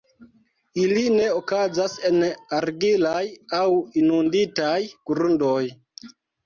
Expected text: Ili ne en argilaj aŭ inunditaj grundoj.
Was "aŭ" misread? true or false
false